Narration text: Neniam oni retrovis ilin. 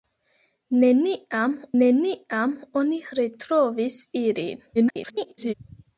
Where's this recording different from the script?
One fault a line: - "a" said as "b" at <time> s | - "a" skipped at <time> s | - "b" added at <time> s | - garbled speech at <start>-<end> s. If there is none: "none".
- "neniam" added at 1.8 s
- garbled speech at 4.8-5.5 s